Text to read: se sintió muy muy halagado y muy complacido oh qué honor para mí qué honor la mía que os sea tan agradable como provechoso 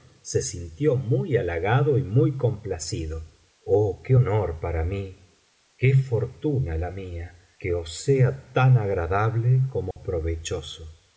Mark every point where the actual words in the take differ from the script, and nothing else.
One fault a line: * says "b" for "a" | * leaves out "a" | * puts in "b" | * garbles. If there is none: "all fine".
* leaves out "muy"
* says "fortuna" for "honor"